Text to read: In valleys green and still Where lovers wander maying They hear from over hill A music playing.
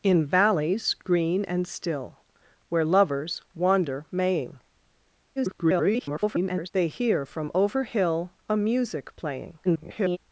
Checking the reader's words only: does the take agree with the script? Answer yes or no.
no